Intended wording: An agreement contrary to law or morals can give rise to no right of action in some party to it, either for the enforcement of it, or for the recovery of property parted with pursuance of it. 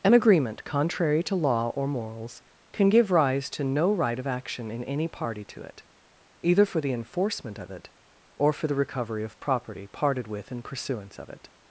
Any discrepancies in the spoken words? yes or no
yes